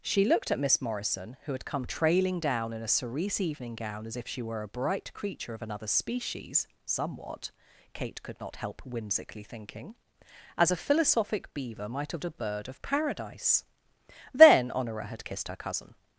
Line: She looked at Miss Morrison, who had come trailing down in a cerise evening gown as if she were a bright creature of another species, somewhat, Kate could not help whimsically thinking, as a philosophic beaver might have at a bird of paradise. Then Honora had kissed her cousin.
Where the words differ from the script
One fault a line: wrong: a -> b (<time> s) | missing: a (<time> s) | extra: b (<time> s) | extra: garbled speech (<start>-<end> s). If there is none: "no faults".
no faults